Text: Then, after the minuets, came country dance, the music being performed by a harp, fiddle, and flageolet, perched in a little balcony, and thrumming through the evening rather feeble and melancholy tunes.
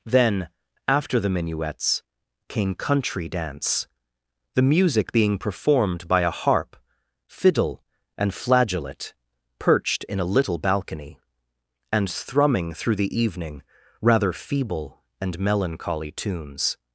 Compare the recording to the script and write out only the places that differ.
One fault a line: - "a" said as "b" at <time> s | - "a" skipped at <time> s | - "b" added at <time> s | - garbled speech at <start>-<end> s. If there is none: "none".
none